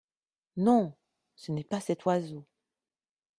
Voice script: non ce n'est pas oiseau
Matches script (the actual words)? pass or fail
fail